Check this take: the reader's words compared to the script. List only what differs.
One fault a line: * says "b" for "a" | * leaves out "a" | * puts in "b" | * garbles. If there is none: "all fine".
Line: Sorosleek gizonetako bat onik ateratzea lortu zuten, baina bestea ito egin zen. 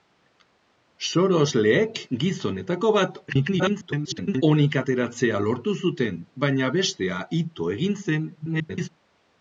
* garbles
* garbles